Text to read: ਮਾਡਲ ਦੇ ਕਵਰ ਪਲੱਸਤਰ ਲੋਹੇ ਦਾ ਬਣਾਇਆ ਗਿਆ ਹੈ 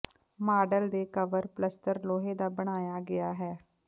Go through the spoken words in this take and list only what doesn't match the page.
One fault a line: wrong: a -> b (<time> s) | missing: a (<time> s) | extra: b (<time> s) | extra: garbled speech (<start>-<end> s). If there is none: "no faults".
no faults